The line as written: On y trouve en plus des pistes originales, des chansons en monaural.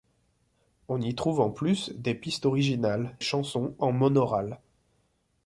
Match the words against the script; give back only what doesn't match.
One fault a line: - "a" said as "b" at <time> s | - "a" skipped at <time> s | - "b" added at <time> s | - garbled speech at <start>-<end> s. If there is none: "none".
- "des" skipped at 3.2 s